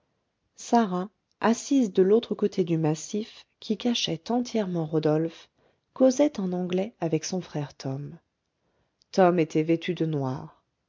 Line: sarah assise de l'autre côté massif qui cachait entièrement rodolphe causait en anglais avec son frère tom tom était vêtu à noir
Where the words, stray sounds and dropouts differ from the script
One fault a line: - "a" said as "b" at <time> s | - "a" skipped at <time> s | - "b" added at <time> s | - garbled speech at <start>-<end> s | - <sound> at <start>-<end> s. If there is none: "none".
- "du" added at 2.6 s
- "à" said as "de" at 9.9 s